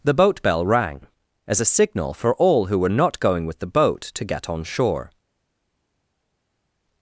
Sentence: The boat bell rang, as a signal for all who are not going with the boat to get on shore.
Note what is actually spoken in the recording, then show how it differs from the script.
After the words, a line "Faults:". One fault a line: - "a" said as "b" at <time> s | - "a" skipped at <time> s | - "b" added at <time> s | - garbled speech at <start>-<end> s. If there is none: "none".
The boat bell rang, as a signal for all who were not going with the boat to get on shore.
Faults:
- "are" said as "were" at 2.8 s